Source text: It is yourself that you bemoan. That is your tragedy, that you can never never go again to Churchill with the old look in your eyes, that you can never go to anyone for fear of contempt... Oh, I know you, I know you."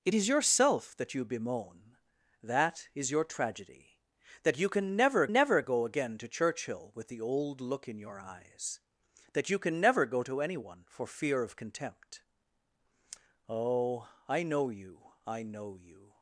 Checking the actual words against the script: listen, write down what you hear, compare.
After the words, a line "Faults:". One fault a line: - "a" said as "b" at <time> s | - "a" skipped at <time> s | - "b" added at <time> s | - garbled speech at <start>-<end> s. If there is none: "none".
It is yourself that you bemoan. That is your tragedy, that you can never never go again to Churchill with the old look in your eyes, that you can never go to anyone for fear of contempt... Oh, I know you, I know you."
Faults:
none